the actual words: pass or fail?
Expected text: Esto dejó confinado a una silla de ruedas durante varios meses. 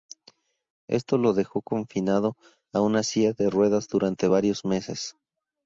fail